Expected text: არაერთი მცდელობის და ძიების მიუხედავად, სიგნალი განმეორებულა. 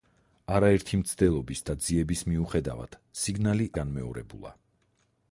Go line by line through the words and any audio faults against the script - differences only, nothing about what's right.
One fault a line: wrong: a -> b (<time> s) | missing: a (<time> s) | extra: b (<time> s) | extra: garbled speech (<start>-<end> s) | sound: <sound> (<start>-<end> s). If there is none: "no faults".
no faults